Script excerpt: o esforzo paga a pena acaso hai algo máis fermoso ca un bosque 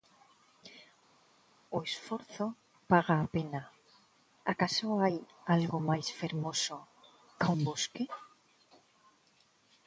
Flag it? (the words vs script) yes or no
no